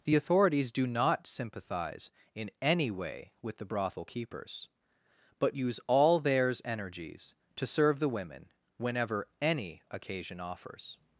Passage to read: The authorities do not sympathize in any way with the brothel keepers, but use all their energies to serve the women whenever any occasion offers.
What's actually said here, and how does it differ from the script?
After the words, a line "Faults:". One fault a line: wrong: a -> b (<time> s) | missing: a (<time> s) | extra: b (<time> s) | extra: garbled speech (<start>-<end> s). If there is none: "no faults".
The authorities do not sympathize in any way with the brothel keepers, but use all theirs energies to serve the women whenever any occasion offers.
Faults:
wrong: their -> theirs (6.2 s)